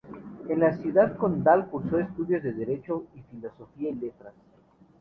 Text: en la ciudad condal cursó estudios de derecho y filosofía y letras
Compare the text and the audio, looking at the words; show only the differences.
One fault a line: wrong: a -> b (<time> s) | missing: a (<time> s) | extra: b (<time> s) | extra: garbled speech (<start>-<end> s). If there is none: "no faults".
no faults